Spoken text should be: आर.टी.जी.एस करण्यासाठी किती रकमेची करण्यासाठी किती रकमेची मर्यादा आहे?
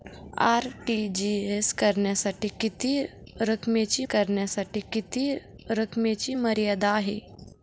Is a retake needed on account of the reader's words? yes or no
no